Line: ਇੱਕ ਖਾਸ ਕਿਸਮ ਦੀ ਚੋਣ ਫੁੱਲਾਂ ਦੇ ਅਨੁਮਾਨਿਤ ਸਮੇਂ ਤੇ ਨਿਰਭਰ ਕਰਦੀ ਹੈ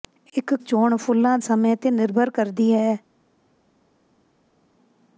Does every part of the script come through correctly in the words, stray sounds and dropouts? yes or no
no